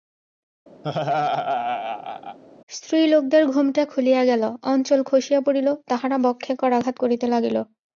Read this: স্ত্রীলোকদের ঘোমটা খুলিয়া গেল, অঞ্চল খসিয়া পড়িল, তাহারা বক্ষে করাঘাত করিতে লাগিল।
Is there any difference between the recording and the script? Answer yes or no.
no